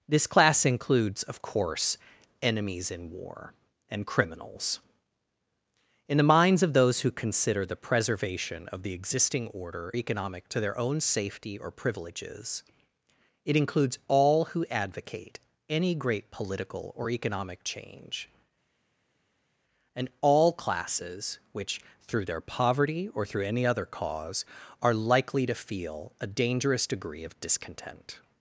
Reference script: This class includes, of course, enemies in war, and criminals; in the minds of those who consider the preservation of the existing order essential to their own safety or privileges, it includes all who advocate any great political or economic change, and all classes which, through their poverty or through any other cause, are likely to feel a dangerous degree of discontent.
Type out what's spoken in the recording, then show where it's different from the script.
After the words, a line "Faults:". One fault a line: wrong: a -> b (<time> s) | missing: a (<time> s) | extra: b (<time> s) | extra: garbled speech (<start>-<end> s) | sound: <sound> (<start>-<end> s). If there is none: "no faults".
This class includes, of course, enemies in war, and criminals; in the minds of those who consider the preservation of the existing order economic to their own safety or privileges, it includes all who advocate any great political or economic change, and all classes which, through their poverty or through any other cause, are likely to feel a dangerous degree of discontent.
Faults:
wrong: essential -> economic (9.9 s)